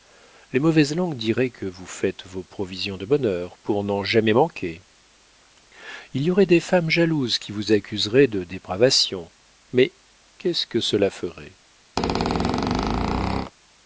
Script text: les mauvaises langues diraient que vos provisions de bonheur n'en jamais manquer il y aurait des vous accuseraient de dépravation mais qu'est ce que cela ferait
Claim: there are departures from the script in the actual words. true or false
true